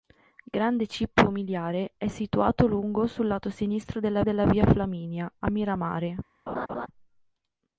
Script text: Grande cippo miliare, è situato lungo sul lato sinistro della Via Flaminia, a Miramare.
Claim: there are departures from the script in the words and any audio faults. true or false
true